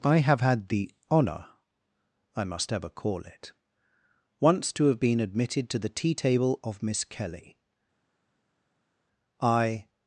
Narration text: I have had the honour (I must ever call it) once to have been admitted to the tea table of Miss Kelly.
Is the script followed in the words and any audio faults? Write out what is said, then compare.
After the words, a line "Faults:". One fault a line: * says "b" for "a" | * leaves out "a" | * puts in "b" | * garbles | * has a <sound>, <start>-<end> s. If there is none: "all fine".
I have had the honour (I must ever call it) once to have been admitted to the tea table of Miss Kelly. I
Faults:
* puts in "I"